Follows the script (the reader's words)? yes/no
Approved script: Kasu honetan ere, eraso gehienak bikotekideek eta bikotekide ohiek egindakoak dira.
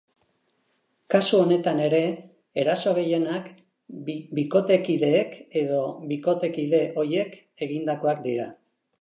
no